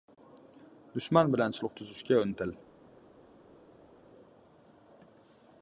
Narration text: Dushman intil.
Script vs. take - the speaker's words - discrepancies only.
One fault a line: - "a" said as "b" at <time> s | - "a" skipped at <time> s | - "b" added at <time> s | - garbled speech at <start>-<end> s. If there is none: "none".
- "bilan sulh tuzishga" added at 1.4 s